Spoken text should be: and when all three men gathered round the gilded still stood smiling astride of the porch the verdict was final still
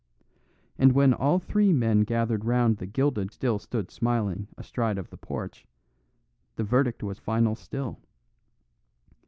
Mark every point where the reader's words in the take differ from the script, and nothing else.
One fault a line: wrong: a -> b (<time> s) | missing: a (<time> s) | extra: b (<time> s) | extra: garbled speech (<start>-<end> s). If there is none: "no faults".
no faults